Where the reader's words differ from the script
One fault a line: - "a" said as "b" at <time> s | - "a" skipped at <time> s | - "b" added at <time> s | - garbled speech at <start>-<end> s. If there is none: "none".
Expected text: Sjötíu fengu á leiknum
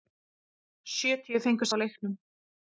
none